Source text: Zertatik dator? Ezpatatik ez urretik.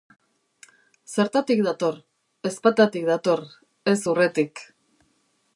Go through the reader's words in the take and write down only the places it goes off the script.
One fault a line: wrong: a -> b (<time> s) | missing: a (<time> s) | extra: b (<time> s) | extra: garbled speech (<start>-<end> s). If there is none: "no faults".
extra: dator (3.1 s)